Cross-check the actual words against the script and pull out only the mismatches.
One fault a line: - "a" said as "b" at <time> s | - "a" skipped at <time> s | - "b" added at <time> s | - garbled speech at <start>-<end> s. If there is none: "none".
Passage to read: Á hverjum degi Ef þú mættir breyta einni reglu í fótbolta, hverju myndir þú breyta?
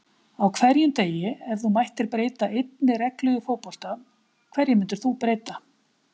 none